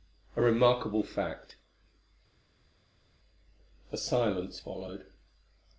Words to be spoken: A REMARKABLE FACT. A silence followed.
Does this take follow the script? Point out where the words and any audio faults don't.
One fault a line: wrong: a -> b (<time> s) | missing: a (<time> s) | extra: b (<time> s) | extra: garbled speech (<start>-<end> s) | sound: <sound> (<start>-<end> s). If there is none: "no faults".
no faults